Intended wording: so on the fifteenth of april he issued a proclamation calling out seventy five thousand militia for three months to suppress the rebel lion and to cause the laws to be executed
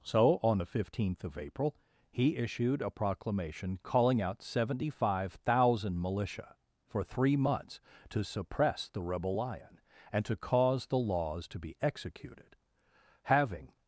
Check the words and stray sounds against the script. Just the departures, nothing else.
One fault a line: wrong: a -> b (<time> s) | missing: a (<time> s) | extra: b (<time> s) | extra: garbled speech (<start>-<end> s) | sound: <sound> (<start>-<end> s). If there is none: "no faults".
extra: having (13.2 s)